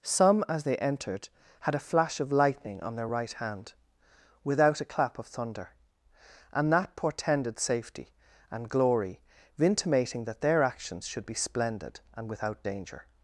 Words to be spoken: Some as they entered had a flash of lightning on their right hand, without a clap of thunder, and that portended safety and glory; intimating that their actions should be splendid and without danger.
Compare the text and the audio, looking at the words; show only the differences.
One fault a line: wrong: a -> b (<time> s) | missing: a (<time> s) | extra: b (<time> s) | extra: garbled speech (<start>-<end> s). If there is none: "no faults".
no faults